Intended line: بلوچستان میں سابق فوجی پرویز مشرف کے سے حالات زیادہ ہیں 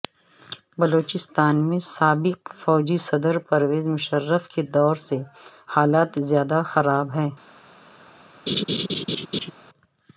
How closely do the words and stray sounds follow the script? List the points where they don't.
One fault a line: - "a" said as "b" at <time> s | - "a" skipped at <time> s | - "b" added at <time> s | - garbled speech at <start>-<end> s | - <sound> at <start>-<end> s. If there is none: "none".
- "صدر" added at 3.0 s
- "دور" added at 4.7 s
- "خراب" added at 6.7 s
- laugh at 8.5-9.5 s